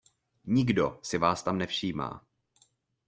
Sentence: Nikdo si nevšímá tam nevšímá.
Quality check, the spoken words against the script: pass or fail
fail